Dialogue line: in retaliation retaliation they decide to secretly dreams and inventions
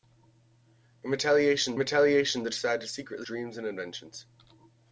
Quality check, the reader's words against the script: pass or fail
pass